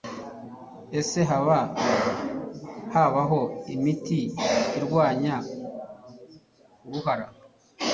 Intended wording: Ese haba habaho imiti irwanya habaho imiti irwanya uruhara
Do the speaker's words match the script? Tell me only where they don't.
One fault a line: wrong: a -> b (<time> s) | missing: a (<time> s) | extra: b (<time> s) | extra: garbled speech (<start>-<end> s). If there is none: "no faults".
missing: habaho imiti irwanya (5.4 s)